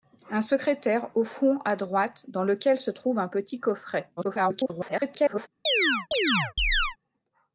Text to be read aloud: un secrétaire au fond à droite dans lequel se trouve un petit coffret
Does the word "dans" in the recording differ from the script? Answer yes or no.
no